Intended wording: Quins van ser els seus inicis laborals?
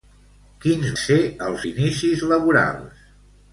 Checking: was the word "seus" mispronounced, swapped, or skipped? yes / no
yes